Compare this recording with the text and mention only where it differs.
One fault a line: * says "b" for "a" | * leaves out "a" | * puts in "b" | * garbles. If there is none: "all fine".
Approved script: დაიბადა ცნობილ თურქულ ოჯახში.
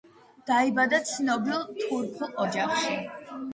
all fine